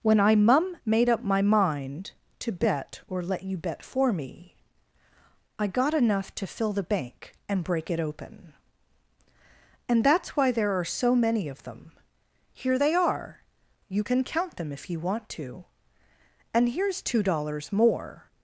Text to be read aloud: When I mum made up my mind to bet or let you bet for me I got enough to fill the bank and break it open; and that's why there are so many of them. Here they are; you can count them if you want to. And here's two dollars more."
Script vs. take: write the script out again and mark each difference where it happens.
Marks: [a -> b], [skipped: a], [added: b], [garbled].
When I mum made up my mind to bet or let you bet for me I got enough to fill the bank and break it open; and that's why there are so many of them. Here they are; you can count them if you want to. And here's two dollars more."